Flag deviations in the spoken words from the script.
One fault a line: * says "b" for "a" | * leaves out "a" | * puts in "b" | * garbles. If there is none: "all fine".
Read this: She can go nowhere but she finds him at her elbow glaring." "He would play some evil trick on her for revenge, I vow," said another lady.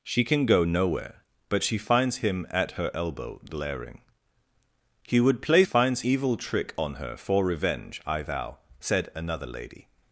* says "finds" for "some"